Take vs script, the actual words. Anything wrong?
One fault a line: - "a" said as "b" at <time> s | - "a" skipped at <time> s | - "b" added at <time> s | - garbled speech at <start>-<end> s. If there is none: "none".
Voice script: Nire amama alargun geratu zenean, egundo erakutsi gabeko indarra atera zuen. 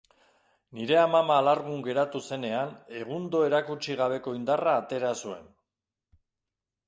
none